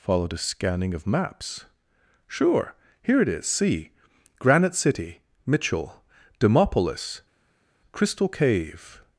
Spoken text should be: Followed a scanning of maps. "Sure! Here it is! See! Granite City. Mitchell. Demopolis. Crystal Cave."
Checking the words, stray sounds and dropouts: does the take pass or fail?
pass